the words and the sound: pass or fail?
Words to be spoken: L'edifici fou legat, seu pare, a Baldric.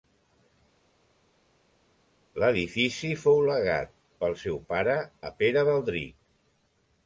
fail